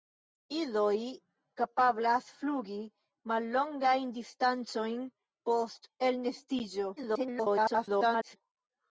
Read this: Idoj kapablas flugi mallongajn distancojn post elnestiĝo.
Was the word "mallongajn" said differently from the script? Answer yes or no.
no